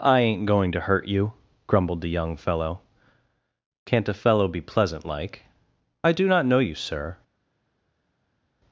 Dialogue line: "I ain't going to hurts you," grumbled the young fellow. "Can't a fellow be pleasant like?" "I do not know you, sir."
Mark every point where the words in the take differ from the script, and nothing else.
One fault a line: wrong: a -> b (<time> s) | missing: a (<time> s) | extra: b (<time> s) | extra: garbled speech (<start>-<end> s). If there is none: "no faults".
wrong: hurts -> hurt (0.8 s)